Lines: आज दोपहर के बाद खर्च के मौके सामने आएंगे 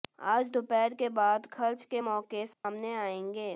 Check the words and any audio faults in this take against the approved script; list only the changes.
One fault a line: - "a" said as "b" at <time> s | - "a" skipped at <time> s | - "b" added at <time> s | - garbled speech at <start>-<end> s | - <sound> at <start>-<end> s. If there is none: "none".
- dropout at 2.5-2.6 s